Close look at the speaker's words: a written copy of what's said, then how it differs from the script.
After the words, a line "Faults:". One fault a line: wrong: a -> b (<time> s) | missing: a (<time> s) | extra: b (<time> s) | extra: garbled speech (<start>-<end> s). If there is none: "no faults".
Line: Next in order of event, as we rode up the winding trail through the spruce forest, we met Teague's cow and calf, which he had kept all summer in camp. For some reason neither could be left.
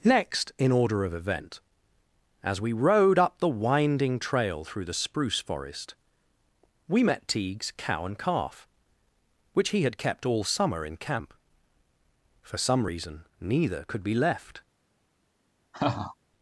Next in order of event, as we rode up the winding trail through the spruce forest, we met Teague's cow and calf, which he had kept all summer in camp. For some reason neither could be left.
Faults:
no faults